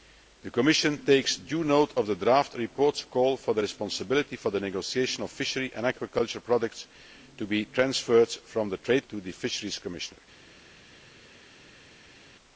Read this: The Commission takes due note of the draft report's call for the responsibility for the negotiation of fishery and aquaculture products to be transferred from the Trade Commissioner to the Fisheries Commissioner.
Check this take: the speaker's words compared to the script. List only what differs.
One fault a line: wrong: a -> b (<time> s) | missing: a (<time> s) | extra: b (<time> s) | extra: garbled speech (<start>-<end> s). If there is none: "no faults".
missing: Commissioner (9.1 s)